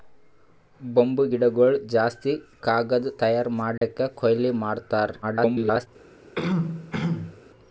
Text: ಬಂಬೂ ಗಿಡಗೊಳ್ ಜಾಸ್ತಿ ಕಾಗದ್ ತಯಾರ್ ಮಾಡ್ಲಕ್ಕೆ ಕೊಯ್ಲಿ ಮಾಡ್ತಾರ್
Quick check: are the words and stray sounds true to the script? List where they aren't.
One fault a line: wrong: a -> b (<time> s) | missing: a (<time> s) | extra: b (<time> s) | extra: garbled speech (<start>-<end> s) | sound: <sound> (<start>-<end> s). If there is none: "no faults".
sound: dropout (3.8-3.8 s)
extra: garbled speech (5.2-5.9 s)
sound: throat clearing (6.4-7.4 s)